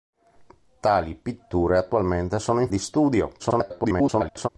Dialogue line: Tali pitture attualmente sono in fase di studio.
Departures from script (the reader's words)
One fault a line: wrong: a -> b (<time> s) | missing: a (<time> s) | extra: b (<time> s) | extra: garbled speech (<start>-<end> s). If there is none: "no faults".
missing: fase (2.7 s)
extra: garbled speech (3.4-4.5 s)